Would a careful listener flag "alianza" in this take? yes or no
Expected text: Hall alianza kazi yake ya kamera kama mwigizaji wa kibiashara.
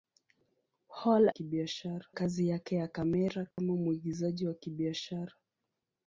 yes